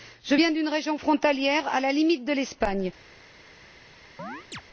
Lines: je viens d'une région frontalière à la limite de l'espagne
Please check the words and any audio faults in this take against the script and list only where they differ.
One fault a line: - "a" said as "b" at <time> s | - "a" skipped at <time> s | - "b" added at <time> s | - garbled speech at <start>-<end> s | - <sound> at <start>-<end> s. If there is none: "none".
- chirp at 4.2-4.6 s